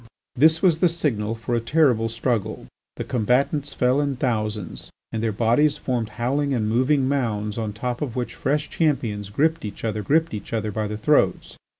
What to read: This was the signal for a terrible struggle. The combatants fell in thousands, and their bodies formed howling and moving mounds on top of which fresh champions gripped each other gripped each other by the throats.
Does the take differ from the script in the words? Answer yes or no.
no